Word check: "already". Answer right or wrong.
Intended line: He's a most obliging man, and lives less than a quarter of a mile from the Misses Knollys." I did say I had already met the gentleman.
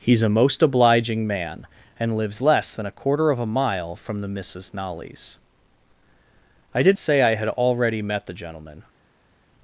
right